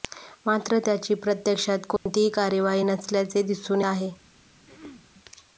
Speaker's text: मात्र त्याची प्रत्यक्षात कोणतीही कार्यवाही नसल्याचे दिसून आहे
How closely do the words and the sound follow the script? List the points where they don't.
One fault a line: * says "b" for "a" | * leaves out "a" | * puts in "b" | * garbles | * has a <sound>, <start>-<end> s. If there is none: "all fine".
* has a dropout, 2.0-2.1 s
* has a throat clearing, 4.7-5.1 s